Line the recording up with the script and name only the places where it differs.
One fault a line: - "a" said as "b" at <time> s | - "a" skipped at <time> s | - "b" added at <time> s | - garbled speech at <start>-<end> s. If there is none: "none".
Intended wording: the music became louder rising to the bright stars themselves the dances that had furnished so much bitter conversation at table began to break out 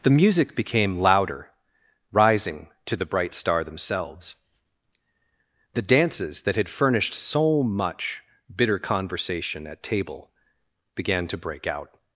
- "stars" said as "star" at 3.4 s